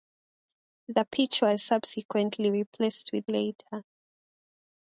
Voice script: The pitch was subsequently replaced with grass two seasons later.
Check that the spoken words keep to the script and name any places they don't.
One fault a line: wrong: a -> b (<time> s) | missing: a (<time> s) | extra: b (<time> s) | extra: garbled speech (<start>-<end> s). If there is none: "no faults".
missing: grass two seasons (3.3 s)